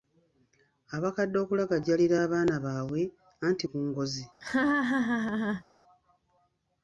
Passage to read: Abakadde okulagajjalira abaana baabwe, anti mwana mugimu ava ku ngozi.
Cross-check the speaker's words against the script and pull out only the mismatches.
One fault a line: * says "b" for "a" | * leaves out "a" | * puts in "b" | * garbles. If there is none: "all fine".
* leaves out "mwana mugimu ava"